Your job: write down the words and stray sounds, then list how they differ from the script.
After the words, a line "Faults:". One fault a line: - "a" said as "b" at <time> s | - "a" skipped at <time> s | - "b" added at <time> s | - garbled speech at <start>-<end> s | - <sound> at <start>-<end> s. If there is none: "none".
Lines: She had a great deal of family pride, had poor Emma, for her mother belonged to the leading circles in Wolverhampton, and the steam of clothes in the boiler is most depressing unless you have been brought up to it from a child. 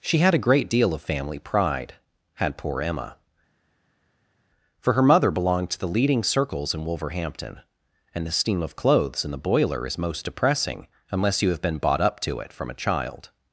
She had a great deal of family pride, had poor Emma, for her mother belonged to the leading circles in Wolverhampton, and the steam of clothes in the boiler is most depressing unless you have been bought up to it from a child.
Faults:
- "brought" said as "bought" at 11.8 s